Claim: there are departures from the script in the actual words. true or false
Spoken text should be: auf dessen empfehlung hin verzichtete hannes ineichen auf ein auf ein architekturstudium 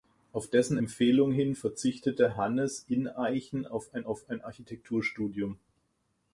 false